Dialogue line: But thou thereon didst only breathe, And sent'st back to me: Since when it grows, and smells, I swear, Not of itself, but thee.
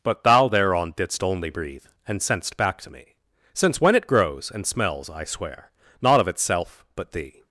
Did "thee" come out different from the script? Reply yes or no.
no